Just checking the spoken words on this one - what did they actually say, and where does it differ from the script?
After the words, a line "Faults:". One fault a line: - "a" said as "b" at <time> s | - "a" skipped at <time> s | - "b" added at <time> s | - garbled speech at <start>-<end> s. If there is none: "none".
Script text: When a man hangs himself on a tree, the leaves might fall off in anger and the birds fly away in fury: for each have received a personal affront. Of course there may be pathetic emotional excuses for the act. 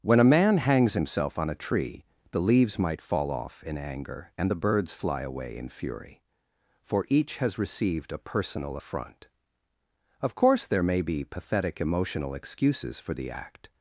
When a man hangs himself on a tree, the leaves might fall off in anger and the birds fly away in fury: for each has received a personal affront. Of course there may be pathetic emotional excuses for the act.
Faults:
- "have" said as "has" at 7.4 s